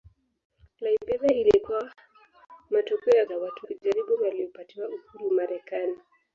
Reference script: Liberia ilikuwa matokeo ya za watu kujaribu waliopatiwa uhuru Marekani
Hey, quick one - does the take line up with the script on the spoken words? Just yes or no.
yes